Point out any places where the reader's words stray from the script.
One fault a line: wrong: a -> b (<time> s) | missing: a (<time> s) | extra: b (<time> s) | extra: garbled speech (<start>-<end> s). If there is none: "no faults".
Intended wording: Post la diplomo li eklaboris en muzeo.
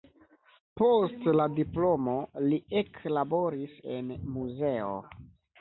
no faults